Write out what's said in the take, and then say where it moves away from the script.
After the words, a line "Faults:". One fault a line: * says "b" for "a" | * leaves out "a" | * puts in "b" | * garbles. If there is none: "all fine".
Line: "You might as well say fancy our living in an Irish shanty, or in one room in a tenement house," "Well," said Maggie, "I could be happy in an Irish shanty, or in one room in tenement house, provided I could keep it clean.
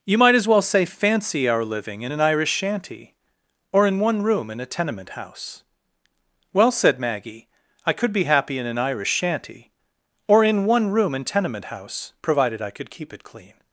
"You might as well say fancy our living in an Irish shanty, or in one room in a tenement house," "Well," said Maggie, "I could be happy in an Irish shanty, or in one room in tenement house, provided I could keep it clean.
Faults:
all fine